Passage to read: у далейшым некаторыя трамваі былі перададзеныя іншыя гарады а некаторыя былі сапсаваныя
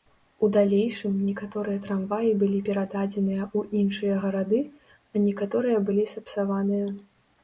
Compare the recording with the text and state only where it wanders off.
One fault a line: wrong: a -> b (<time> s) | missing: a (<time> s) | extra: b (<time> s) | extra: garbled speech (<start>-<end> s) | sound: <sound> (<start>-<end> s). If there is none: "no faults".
extra: ў (3.6 s)